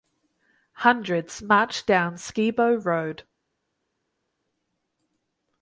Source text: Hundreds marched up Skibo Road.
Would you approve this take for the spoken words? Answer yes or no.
no